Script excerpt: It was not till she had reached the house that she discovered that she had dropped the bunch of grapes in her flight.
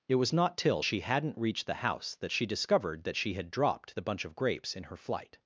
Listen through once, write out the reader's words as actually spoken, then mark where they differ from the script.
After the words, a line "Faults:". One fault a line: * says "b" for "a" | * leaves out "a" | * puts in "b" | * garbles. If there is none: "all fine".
It was not till she hadn't reached the house that she discovered that she had dropped the bunch of grapes in her flight.
Faults:
* says "hadn't" for "had"